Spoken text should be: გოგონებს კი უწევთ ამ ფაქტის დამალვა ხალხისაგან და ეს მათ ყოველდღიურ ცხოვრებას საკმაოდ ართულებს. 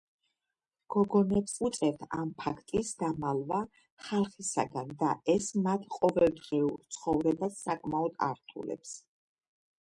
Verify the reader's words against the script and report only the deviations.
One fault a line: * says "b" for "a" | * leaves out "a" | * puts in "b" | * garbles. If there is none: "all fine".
* leaves out "კი"